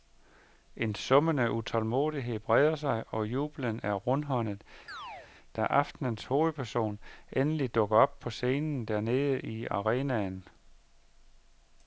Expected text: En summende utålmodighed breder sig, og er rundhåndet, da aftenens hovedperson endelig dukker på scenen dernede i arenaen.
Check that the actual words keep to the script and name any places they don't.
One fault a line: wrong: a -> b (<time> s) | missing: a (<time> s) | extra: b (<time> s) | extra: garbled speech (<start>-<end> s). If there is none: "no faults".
extra: jubelen (3.3 s)
extra: op (8.0 s)